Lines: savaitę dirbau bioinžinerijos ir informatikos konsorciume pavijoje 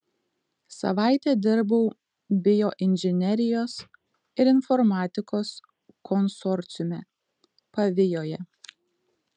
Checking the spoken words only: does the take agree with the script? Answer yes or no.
yes